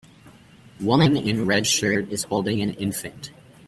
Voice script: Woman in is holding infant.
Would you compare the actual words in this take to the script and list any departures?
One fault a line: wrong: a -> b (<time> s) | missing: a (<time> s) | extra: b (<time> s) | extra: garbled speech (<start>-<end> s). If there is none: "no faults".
extra: red shirt (1.4 s)
extra: an (2.6 s)